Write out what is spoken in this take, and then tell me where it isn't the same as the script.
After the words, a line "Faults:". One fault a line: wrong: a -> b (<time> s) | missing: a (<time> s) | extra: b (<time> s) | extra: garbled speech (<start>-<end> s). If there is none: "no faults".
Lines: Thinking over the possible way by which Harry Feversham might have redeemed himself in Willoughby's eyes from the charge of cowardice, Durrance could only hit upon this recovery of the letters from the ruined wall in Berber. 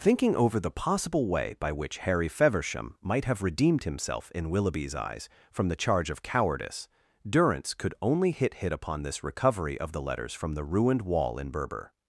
Thinking over the possible way by which Harry Feversham might have redeemed himself in Willoughby's eyes from the charge of cowardice, Durrance could only hit hit upon this recovery of the letters from the ruined wall in Berber.
Faults:
extra: hit (8.6 s)